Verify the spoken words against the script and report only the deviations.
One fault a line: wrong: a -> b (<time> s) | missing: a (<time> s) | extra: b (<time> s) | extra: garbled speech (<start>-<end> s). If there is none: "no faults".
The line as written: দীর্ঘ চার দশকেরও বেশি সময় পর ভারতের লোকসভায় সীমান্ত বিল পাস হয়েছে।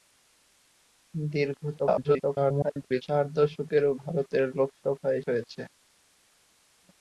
extra: garbled speech (1.8-3.0 s)
missing: বেশি সময় পর (3.9 s)
missing: সীমান্ত বিল পাস (5.2 s)